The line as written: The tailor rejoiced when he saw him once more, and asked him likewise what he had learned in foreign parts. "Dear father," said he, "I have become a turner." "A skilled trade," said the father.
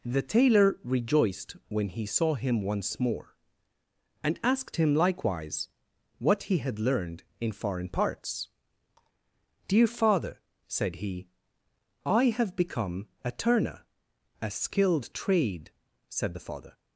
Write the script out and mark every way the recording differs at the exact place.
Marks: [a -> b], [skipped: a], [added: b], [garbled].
The tailor rejoiced when he saw him once more, and asked him likewise what he had learned in foreign parts. "Dear father," said he, "I have become a turner." "A skilled trade," said the father.